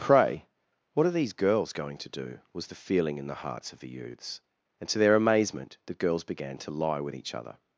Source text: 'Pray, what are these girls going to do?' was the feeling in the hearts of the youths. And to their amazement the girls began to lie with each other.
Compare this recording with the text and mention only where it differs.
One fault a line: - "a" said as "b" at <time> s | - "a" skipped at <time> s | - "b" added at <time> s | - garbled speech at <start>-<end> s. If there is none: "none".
none